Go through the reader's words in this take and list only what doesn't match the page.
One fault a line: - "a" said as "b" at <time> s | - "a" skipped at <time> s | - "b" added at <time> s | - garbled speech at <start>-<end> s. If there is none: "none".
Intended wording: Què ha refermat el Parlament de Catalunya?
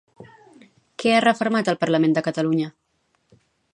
none